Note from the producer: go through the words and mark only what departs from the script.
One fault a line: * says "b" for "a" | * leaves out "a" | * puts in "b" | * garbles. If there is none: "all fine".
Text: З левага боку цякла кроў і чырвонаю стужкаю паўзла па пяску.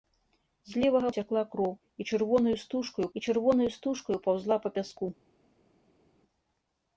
* leaves out "боку"
* puts in "і чырвонаю стужкаю"